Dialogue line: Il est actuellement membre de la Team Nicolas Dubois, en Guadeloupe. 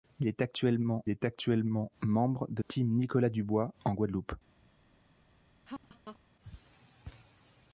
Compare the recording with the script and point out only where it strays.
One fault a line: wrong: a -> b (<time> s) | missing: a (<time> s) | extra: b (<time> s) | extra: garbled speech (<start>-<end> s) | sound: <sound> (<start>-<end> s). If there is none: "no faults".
extra: est actuellement (1.1 s)
missing: la (2.6 s)
sound: laugh (5.7-6.2 s)